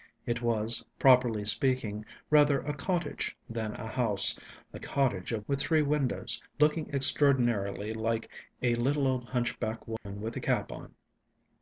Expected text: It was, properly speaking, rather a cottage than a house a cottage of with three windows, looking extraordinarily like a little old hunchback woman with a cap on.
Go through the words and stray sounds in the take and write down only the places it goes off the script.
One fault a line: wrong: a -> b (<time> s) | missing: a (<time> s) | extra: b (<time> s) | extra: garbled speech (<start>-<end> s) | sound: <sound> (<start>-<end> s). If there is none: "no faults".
sound: dropout (10.0-10.1 s)